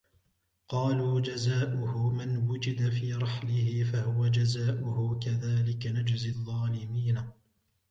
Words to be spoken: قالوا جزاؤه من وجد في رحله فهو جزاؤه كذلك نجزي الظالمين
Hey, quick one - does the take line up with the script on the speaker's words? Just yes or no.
yes